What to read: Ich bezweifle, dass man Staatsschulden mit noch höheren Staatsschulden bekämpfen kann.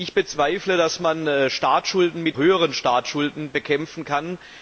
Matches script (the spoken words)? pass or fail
fail